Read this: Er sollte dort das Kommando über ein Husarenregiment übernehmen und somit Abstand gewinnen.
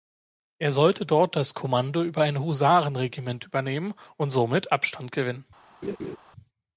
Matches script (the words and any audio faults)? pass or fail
fail